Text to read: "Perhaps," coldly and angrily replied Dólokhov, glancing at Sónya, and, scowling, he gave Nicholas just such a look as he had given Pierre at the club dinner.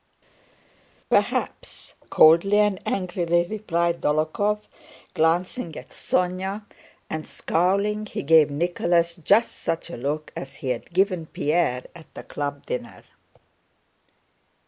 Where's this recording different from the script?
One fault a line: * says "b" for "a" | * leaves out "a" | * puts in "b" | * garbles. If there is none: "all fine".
all fine